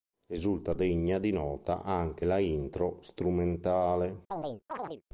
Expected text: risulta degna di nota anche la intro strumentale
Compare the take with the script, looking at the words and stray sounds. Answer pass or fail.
fail